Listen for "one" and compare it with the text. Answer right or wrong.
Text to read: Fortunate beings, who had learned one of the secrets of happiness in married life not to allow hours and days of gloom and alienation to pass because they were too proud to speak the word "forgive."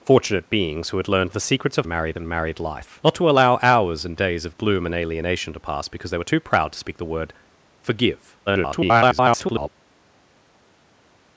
wrong